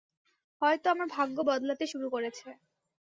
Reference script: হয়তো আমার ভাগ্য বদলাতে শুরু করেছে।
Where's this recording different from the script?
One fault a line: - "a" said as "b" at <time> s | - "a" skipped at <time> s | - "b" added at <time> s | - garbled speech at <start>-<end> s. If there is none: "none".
none